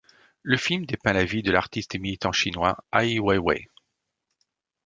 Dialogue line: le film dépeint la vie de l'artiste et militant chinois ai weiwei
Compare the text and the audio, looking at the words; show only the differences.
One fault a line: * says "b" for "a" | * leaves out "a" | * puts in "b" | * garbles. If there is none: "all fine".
all fine